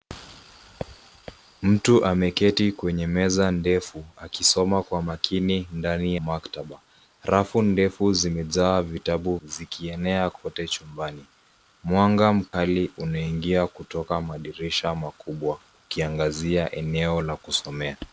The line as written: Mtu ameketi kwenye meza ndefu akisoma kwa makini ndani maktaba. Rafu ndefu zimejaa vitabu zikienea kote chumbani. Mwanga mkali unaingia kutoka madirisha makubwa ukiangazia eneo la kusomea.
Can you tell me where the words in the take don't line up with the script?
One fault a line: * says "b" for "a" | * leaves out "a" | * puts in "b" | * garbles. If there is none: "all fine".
all fine